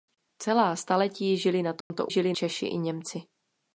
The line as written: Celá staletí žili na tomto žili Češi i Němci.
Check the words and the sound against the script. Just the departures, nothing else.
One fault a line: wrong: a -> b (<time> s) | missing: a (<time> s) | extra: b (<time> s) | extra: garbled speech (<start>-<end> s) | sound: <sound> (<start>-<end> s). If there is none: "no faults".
sound: dropout (1.8-1.9 s)